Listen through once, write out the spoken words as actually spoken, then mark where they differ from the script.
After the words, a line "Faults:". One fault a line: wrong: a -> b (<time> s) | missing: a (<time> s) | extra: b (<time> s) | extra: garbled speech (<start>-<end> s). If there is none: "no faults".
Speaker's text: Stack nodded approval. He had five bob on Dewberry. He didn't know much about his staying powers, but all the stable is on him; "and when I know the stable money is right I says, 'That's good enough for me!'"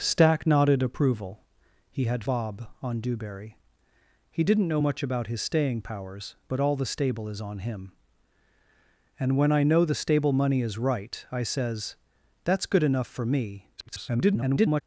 Stack nodded approval. He had bob on Dewberry. He didn't know much about his staying powers, but all the stable is on him; "and when I know the stable money is right I says, 'That's good enough for me!'" [garbled]
Faults:
missing: five (2.2 s)
extra: garbled speech (13.8-14.8 s)